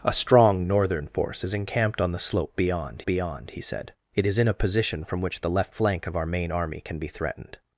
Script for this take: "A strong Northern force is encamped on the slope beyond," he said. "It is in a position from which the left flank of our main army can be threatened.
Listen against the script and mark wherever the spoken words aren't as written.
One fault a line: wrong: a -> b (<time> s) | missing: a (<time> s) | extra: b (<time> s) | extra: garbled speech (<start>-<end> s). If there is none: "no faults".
extra: beyond (3.0 s)